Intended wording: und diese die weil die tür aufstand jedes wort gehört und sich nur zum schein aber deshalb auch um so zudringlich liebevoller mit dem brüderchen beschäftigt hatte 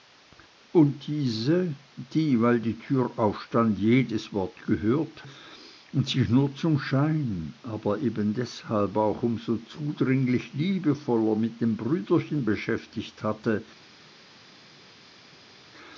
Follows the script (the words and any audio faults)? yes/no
no